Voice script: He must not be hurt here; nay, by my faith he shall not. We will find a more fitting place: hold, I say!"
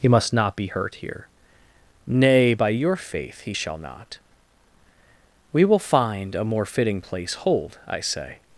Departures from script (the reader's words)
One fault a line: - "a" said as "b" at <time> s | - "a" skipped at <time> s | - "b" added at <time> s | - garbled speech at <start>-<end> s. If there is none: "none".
- "my" said as "your" at 2.7 s